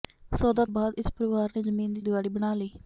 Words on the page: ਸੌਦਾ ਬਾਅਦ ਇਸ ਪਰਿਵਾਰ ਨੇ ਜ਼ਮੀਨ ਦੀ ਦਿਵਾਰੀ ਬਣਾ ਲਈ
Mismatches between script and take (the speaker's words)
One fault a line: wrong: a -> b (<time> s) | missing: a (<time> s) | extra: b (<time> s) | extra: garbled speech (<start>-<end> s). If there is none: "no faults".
no faults